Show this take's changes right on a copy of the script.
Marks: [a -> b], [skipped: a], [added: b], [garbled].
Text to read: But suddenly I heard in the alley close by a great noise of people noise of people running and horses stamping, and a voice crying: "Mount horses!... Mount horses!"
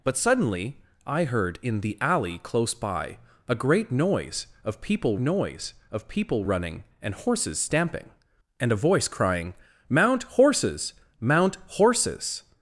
But suddenly I heard in the alley close by a great noise of people noise of people running and horses stamping, and a voice crying: "Mount horses!... Mount horses!"